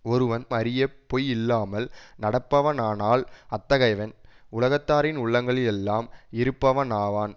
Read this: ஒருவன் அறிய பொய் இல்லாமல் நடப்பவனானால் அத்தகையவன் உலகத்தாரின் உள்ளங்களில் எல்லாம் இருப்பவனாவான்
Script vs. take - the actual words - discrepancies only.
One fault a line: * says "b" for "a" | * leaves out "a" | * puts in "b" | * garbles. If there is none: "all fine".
all fine